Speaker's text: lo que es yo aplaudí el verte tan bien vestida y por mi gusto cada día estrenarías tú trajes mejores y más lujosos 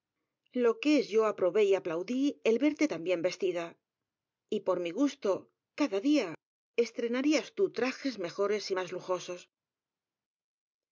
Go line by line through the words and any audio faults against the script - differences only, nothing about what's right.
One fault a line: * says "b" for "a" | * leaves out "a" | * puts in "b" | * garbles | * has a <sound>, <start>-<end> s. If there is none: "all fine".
* puts in "aprobé y"